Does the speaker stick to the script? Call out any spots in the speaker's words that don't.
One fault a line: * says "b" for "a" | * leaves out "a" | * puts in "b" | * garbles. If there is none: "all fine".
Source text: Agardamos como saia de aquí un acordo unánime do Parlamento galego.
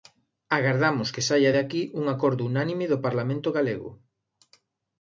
* says "que" for "como"